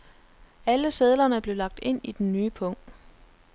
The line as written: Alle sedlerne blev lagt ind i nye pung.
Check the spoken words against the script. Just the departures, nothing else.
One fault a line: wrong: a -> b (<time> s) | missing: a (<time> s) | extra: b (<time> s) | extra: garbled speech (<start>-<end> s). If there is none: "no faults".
extra: den (2.1 s)